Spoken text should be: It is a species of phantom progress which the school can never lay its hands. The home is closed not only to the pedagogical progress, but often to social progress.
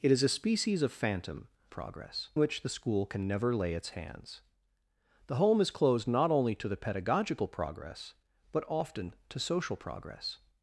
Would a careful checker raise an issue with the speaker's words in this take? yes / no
no